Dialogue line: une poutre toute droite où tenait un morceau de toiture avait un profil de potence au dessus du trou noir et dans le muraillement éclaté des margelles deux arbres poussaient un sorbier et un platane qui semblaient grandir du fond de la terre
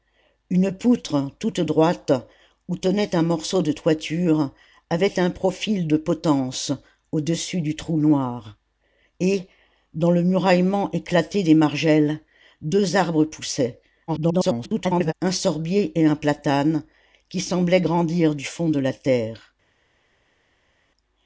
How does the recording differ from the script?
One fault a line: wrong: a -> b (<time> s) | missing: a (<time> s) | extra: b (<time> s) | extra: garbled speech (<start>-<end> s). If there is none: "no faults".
extra: garbled speech (14.1-15.1 s)